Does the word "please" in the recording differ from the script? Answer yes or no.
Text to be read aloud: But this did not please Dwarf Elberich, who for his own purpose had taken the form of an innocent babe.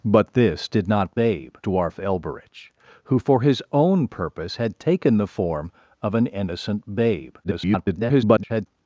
yes